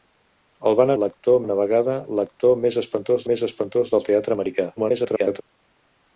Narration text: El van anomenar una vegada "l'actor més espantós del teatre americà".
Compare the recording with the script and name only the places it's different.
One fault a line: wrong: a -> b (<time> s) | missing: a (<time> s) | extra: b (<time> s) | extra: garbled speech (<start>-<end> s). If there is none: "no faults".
wrong: anomenar -> l'actor (1.0 s)
extra: més espantós (3.3 s)
extra: garbled speech (4.8-5.4 s)